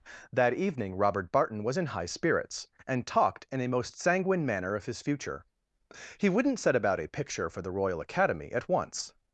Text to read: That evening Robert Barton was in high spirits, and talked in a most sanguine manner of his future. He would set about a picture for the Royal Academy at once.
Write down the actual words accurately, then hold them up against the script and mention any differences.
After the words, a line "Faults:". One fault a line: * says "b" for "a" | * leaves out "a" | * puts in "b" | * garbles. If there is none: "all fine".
That evening Robert Barton was in high spirits, and talked in a most sanguine manner of his future. He wouldn't set about a picture for the Royal Academy at once.
Faults:
* says "wouldn't" for "would"